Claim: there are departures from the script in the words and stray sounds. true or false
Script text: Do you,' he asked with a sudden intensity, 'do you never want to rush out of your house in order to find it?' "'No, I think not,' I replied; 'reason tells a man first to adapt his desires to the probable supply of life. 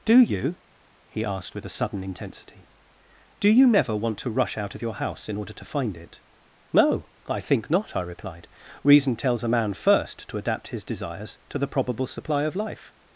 false